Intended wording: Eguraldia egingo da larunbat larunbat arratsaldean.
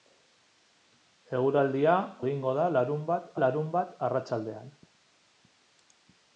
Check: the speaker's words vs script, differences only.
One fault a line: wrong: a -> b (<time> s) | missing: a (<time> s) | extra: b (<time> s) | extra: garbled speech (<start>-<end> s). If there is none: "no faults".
no faults